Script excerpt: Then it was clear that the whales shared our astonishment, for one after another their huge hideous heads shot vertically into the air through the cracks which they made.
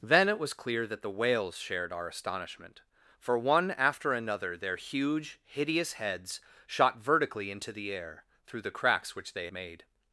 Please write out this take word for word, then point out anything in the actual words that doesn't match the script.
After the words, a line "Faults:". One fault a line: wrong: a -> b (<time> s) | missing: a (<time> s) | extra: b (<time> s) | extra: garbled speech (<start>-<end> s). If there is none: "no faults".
Then it was clear that the whales shared our astonishment, for one after another their huge hideous heads shot vertically into the air through the cracks which they made.
Faults:
no faults